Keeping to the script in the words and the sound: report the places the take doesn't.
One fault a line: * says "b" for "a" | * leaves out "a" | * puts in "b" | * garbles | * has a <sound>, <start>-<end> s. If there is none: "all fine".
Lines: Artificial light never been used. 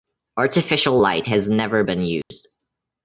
* puts in "has"
* has a dropout, 2.2-2.3 s